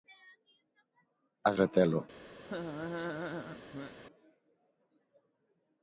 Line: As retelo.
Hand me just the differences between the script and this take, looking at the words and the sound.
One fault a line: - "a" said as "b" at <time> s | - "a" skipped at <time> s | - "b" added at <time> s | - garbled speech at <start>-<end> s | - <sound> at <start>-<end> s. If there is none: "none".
- laugh at 2.4-4.0 s